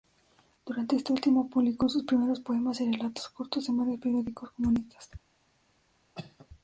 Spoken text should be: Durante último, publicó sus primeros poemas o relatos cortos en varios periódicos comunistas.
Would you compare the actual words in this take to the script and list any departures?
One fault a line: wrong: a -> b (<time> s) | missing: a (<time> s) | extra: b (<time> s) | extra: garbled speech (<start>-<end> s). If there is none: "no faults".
extra: este (0.9 s)
wrong: o -> y (2.8 s)